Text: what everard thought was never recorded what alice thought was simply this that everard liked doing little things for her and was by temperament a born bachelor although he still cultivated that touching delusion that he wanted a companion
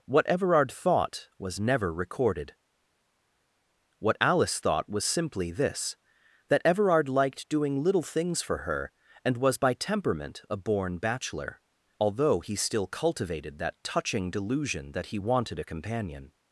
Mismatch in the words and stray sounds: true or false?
false